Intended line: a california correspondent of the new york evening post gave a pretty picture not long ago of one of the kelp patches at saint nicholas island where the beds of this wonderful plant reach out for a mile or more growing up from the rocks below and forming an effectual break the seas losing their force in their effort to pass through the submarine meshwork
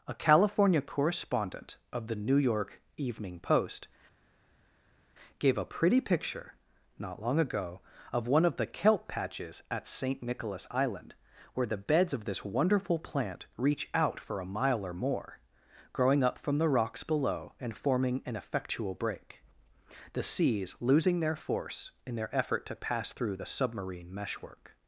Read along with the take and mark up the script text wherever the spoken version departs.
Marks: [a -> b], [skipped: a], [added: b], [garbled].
a california correspondent of the new york evening post gave a pretty picture not long ago of one of the kelp patches at saint nicholas island where the beds of this wonderful plant reach out for a mile or more growing up from the rocks below and forming an effectual break the seas losing their force in their effort to pass through the submarine meshwork